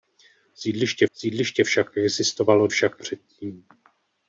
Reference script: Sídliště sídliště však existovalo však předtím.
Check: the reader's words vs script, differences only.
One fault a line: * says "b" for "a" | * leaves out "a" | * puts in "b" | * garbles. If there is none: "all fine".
all fine